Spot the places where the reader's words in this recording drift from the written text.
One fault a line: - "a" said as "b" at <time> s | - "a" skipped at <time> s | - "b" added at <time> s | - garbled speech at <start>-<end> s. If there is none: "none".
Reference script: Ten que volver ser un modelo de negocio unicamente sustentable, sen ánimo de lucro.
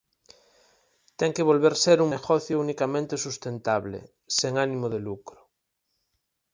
- "modelo de" skipped at 2.1 s